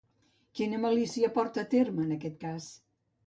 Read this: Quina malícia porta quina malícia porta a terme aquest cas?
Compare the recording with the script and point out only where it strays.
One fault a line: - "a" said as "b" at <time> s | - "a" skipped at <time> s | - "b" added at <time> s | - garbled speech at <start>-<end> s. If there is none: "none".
- "quina malícia porta" skipped at 1.6 s
- "en" added at 2.1 s